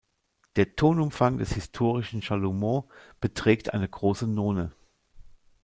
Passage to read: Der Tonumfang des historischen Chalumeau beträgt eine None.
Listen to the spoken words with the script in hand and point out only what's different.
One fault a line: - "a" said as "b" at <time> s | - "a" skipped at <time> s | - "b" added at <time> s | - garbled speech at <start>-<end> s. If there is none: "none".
- "große" added at 3.9 s